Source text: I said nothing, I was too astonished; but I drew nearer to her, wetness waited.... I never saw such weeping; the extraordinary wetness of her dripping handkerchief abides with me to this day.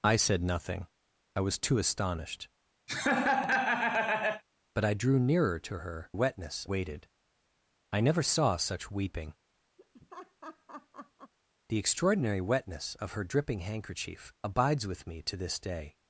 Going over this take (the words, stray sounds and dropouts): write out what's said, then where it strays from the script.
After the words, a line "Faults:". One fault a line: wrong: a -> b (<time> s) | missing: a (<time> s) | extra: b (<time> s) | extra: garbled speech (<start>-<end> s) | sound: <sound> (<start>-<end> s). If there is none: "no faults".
I said nothing, I was too astonished; but I drew nearer to her, wetness waited.... I never saw such weeping; the extraordinary wetness of her dripping handkerchief abides with me to this day.
Faults:
sound: laugh (2.9-4.4 s)
sound: laugh (9.8-11.3 s)